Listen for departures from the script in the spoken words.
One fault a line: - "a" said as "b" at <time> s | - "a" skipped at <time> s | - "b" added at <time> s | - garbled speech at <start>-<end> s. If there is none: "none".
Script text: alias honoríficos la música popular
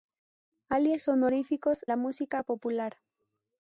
none